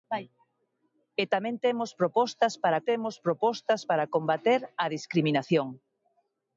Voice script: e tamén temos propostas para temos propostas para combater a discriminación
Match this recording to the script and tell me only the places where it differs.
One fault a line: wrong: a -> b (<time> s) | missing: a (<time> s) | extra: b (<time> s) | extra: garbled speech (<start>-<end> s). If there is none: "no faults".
no faults